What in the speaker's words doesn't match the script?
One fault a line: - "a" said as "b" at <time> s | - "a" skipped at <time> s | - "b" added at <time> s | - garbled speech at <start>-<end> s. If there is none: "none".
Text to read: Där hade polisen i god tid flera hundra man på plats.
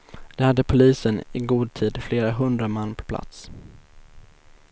none